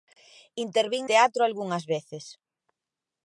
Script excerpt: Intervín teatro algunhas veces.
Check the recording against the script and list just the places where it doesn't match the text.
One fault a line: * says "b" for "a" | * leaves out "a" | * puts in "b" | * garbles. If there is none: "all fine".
all fine